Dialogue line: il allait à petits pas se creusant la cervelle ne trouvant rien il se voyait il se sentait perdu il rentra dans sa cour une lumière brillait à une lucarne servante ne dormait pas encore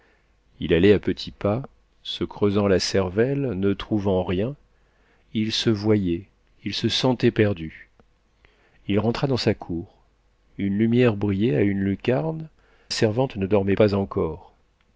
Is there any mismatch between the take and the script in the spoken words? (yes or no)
no